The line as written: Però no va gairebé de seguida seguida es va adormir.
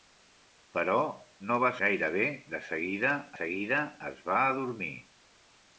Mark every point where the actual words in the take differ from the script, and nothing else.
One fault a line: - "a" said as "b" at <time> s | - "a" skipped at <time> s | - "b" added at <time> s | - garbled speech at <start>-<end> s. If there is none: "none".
none